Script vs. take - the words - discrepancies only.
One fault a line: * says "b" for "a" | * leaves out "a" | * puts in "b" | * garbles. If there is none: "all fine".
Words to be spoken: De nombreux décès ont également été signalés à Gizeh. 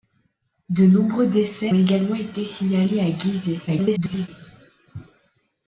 * leaves out "ont"
* garbles